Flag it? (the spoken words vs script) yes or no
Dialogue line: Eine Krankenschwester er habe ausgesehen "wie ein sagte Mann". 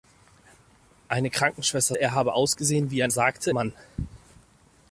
no